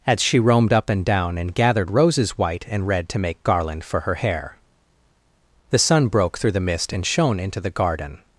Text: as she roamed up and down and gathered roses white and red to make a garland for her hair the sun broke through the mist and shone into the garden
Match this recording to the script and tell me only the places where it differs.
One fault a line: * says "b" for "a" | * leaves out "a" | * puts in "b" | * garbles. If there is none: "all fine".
* leaves out "a"